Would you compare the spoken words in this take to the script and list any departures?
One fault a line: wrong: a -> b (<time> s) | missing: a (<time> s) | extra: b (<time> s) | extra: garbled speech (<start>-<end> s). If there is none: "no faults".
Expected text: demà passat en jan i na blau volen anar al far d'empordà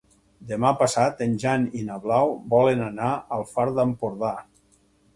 no faults